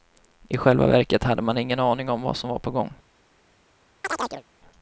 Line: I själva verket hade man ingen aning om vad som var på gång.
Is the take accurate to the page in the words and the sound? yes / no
no